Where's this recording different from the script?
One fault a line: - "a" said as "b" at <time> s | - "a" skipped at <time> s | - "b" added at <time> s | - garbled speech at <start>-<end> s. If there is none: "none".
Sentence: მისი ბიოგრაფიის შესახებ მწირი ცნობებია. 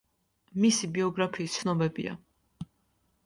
- "შესახებ მწირი" skipped at 1.6 s